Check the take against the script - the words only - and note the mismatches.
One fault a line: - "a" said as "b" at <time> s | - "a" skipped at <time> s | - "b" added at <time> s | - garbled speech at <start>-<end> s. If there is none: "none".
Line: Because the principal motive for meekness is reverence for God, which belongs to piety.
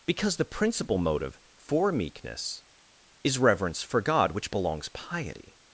- "to" skipped at 4.9 s